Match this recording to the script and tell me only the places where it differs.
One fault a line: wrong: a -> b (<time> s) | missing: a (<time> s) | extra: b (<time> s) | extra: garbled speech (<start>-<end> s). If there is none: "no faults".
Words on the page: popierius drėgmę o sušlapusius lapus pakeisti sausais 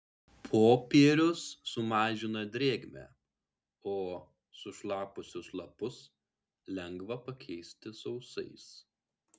extra: sumažina (1.7 s)
extra: lengva (6.8 s)